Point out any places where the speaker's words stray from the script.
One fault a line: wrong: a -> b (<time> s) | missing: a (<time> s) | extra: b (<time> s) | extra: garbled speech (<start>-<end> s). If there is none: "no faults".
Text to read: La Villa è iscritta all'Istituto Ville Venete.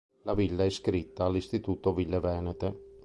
no faults